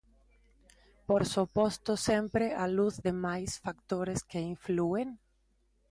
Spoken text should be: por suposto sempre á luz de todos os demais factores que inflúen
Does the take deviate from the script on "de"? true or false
true